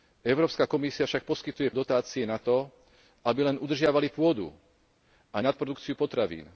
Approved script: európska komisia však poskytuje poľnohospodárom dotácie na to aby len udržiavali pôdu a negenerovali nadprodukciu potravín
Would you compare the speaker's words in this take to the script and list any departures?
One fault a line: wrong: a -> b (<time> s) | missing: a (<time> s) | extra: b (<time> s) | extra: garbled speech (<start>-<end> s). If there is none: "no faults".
missing: poľnohospodárom (1.7 s)
missing: negenerovali (5.4 s)